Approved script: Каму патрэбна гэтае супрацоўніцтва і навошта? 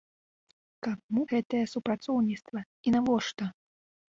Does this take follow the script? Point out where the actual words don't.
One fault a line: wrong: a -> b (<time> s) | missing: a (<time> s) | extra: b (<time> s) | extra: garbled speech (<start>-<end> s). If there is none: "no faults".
missing: патрэбна (1.2 s)